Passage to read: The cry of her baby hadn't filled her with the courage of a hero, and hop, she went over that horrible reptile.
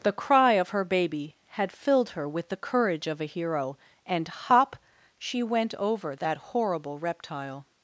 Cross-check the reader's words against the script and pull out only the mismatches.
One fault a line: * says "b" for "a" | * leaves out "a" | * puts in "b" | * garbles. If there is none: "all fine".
* says "had" for "hadn't"